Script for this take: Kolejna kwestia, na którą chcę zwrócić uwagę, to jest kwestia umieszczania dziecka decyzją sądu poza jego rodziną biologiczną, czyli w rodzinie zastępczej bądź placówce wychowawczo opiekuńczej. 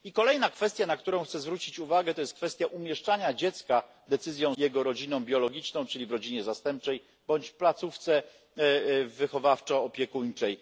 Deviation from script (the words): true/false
true